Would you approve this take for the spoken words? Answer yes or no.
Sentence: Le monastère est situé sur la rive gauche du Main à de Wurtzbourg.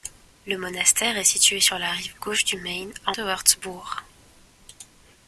yes